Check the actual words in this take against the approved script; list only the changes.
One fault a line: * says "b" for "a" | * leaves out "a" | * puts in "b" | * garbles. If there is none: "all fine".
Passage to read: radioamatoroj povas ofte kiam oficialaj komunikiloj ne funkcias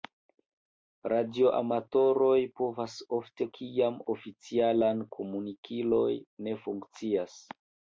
all fine